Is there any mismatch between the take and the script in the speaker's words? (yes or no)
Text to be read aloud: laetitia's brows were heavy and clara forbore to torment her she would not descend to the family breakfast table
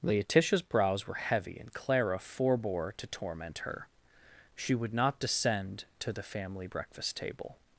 no